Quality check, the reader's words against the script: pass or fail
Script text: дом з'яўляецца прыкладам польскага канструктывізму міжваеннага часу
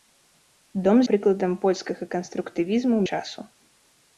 fail